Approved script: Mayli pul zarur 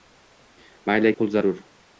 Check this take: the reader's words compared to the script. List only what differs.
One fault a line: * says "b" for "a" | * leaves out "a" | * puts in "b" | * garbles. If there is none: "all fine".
all fine